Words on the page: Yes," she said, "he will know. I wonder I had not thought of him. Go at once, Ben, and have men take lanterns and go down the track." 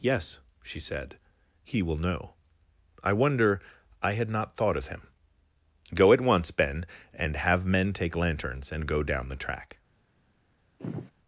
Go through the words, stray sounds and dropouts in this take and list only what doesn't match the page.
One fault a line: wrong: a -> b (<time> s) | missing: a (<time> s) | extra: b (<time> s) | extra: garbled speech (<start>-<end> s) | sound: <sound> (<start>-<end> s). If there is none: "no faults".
sound: sigh (10.8-11.1 s)